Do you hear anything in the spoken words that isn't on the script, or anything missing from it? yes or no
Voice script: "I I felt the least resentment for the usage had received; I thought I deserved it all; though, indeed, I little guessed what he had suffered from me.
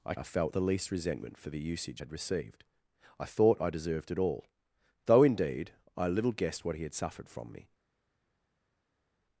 no